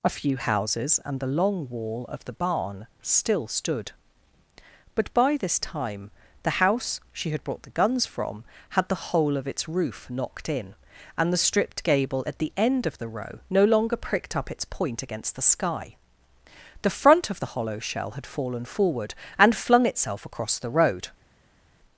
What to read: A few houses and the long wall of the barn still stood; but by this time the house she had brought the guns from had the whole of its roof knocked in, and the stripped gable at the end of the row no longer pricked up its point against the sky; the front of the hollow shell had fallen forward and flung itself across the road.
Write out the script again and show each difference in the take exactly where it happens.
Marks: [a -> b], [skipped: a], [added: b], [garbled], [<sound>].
A few houses and the long wall of the barn still stood; but by this time the house she had brought the guns from had the whole of its roof knocked in, and the stripped gable at the end of the row no longer pricked up its point against the sky; the front of the hollow shell had fallen forward and flung itself across the road.